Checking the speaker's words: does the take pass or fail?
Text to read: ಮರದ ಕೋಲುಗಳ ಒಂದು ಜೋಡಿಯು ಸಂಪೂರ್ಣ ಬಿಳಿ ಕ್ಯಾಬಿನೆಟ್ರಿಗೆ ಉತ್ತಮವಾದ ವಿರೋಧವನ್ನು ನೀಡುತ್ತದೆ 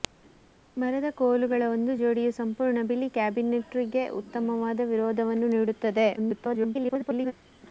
fail